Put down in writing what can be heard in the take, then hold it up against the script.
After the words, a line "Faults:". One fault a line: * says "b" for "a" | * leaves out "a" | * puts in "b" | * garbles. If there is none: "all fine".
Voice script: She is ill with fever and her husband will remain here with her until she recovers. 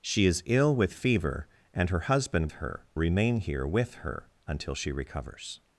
She is ill with fever and her husband her remain here with her until she recovers.
Faults:
* says "her" for "will"